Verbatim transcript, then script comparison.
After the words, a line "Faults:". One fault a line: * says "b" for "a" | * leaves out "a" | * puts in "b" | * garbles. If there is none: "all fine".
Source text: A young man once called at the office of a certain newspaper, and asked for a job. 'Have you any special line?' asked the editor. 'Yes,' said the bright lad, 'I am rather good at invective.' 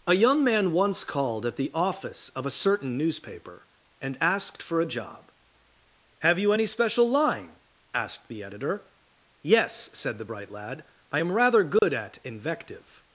A young man once called at the office of a certain newspaper, and asked for a job. 'Have you any special line?' asked the editor. 'Yes,' said the bright lad, 'I am rather good at invective.'
Faults:
all fine